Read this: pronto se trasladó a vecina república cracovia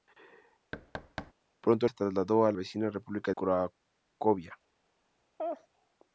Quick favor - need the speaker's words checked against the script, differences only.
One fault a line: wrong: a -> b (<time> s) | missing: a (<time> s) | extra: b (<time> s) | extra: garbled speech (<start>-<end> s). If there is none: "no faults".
no faults